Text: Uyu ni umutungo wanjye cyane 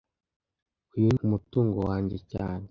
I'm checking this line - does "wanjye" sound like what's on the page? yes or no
yes